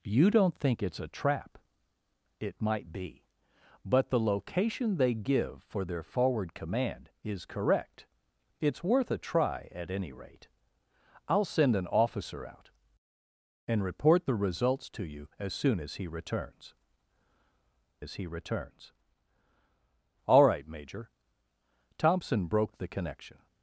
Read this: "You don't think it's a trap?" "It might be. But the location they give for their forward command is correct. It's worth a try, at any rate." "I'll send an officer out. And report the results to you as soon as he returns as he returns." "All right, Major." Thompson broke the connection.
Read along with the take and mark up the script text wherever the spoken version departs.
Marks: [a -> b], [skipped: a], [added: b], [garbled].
"You don't think it's a trap?" "It might be. But the location they give for their forward command is correct. It's worth a try, at any rate." "I'll send an officer out. And report the results to you as soon as he returns as he returns." "All right, Major." Thompson broke the connection.